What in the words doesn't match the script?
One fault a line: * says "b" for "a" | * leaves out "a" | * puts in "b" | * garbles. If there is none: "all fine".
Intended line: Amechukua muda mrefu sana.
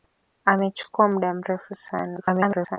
* garbles